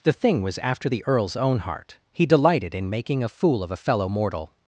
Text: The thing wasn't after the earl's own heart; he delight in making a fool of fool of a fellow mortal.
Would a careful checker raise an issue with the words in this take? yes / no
yes